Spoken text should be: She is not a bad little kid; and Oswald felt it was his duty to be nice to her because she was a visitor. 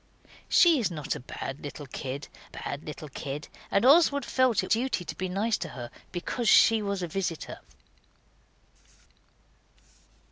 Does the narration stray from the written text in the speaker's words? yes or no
yes